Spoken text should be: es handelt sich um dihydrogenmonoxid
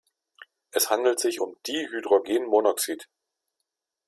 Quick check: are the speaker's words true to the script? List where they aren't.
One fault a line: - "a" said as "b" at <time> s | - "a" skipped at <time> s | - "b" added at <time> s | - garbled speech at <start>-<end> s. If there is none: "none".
none